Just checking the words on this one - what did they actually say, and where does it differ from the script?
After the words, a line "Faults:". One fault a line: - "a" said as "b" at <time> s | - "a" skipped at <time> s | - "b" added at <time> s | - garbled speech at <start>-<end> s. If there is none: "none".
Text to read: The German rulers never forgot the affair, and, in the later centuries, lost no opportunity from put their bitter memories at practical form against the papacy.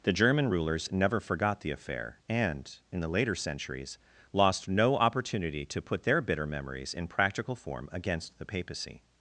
The German rulers never forgot the affair, and, in the later centuries, lost no opportunity to put their bitter memories in practical form against the papacy.
Faults:
- "from" said as "to" at 5.6 s
- "at" said as "in" at 6.9 s